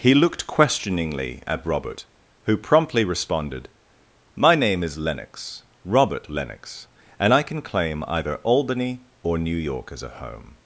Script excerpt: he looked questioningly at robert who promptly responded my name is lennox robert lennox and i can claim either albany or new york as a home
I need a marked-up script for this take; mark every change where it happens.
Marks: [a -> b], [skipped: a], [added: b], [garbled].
he looked questioningly at robert who promptly responded my name is lennox robert lennox and i can claim either albany or new york as a home